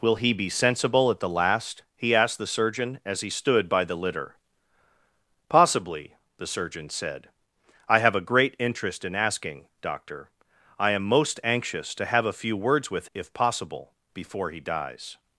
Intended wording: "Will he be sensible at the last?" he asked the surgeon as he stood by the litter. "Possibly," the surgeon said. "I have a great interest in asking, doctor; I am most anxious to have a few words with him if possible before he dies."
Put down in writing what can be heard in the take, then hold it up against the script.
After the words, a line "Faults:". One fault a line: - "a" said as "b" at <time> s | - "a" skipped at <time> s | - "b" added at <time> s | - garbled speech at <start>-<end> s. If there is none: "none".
"Will he be sensible at the last?" he asked the surgeon as he stood by the litter. "Possibly," the surgeon said. "I have a great interest in asking, doctor; I am most anxious to have a few words with if possible before he dies."
Faults:
- "him" skipped at 13.1 s